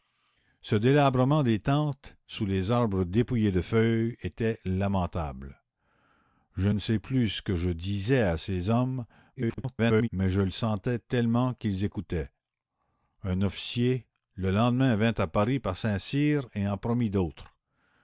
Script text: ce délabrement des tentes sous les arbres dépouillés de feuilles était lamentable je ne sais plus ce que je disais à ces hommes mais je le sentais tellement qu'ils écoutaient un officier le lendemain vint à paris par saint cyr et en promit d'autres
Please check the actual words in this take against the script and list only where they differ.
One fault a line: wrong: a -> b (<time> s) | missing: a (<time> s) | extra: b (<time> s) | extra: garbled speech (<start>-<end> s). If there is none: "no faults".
extra: garbled speech (9.4-10.1 s)